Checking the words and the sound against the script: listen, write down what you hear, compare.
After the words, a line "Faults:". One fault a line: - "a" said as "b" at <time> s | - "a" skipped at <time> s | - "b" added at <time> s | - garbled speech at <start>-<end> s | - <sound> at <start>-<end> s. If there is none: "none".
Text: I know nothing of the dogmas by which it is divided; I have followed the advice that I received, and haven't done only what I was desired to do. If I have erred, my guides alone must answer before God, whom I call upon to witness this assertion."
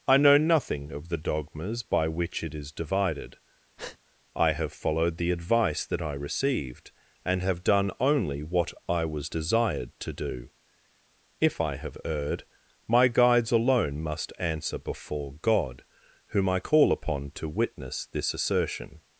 I know nothing of the dogmas by which it is divided; I have followed the advice that I received, and have done only what I was desired to do. If I have erred, my guides alone must answer before God, whom I call upon to witness this assertion."
Faults:
- breath at 3.8-4.0 s
- "haven't" said as "have" at 7.4 s